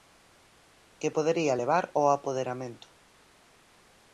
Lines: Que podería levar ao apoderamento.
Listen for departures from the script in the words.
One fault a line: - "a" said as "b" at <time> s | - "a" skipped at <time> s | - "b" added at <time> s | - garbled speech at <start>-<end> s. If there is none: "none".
none